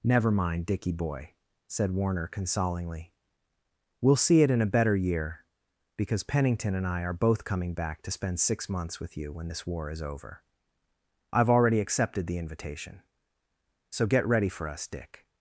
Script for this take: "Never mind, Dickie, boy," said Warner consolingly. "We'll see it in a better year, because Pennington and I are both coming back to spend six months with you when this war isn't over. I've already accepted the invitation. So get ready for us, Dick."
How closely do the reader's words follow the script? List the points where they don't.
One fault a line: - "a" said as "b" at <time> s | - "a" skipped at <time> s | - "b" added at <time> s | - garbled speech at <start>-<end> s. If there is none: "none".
- "isn't" said as "is" at 9.9 s